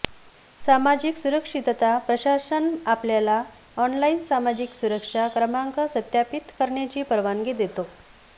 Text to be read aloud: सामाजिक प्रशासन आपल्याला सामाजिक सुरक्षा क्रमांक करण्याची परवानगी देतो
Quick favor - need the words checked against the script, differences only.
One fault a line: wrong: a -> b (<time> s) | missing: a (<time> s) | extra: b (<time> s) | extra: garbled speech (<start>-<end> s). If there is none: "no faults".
extra: सुरक्षितता (1.2 s)
extra: ऑनलाइन (3.8 s)
extra: सत्यापित (5.9 s)